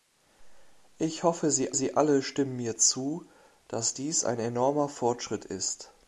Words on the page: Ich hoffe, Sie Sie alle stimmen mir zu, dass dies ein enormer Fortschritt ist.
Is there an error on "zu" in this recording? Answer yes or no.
no